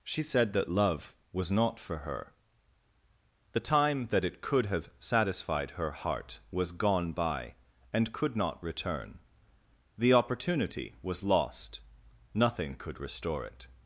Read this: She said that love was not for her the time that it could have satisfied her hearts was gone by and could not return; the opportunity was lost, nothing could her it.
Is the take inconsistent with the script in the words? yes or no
yes